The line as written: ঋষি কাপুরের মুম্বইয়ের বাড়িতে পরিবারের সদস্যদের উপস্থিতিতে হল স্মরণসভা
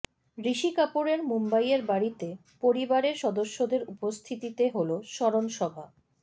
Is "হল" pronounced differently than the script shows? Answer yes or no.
no